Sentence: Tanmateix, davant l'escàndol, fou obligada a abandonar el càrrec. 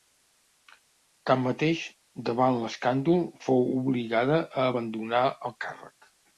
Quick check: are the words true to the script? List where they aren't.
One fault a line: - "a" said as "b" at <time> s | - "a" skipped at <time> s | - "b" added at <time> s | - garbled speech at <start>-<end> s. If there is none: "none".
none